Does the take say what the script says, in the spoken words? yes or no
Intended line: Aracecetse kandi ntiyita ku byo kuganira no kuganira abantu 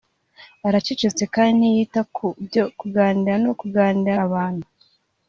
yes